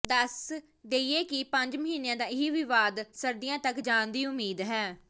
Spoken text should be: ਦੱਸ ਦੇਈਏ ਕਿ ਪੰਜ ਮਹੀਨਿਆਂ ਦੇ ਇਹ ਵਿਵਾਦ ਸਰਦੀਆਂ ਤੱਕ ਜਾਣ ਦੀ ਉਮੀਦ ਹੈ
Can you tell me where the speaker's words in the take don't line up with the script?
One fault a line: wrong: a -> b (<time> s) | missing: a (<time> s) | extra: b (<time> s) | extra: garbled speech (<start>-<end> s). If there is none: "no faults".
wrong: ਦੇ -> ਦਾ (2.1 s)